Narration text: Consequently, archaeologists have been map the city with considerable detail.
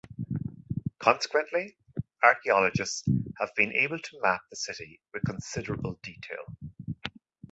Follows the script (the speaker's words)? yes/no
no